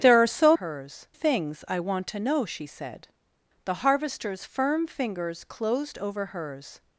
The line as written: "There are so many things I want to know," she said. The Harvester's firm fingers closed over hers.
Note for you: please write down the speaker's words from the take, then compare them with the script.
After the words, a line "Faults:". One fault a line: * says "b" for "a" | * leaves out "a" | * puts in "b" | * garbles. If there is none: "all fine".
"There are so hers things I want to know," she said. The Harvester's firm fingers closed over hers.
Faults:
* says "hers" for "many"